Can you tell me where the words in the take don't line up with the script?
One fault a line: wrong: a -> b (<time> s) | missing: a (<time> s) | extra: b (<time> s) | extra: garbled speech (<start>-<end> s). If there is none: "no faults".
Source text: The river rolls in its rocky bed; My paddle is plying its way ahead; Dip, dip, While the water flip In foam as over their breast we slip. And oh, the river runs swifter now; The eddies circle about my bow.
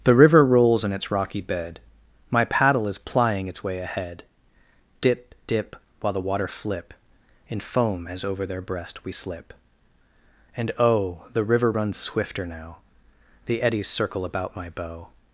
no faults